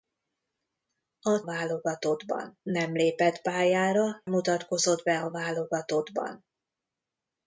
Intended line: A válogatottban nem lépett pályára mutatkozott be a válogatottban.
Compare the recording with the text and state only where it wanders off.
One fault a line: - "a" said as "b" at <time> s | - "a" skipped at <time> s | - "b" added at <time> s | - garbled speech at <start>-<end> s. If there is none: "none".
none